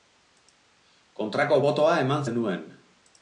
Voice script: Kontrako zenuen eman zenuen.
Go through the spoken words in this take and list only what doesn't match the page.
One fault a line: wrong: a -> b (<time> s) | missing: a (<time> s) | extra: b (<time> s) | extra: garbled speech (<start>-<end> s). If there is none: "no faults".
wrong: zenuen -> botoa (1.6 s)